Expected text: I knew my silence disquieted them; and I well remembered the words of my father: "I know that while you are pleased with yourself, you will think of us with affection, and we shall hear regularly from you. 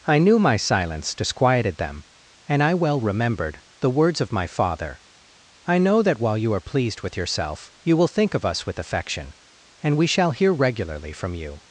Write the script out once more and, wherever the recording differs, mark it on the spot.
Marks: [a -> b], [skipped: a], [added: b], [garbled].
I knew my silence disquieted them; and I well remembered the words of my father: "I know that while you are pleased with yourself, you will think of us with affection, and we shall hear regularly from you.